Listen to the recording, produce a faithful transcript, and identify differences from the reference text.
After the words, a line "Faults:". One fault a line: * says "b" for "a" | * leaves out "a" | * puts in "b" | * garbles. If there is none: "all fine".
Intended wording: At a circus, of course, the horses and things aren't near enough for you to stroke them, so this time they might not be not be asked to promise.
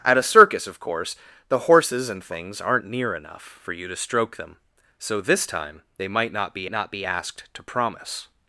At a circus, of course, the horses and things aren't near enough for you to stroke them, so this time they might not be not be asked to promise.
Faults:
all fine